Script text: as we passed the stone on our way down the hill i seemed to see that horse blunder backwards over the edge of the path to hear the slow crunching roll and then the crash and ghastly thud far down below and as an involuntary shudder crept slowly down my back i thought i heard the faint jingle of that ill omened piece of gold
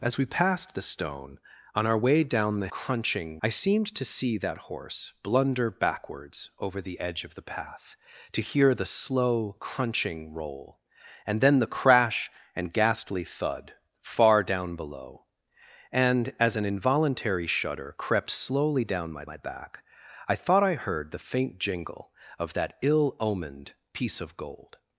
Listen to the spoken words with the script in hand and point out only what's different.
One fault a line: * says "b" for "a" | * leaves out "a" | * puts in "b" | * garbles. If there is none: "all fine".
* says "crunching" for "hill"
* puts in "my"